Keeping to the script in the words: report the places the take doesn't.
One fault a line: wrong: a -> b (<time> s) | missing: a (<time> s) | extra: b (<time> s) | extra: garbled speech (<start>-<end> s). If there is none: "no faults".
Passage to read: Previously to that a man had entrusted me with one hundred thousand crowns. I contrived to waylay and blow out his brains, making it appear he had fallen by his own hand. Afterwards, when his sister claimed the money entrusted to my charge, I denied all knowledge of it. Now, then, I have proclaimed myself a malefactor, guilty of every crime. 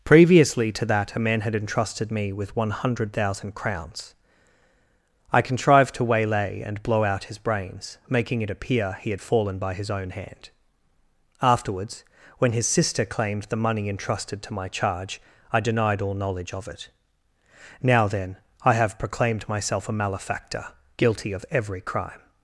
no faults